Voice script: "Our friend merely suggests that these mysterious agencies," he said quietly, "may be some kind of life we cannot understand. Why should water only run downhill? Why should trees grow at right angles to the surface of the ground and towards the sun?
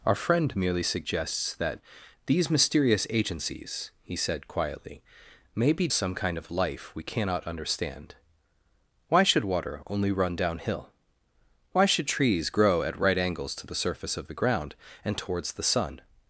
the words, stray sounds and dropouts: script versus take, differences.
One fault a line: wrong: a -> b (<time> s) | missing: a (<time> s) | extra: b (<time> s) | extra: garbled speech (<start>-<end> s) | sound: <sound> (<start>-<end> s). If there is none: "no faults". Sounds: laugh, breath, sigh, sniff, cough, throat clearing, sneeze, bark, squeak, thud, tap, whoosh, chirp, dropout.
no faults